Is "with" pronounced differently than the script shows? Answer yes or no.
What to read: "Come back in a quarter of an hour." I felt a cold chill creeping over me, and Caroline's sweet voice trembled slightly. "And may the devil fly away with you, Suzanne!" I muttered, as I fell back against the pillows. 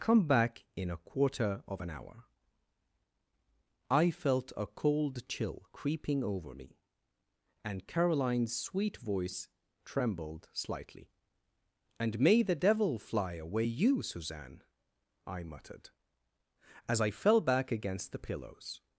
yes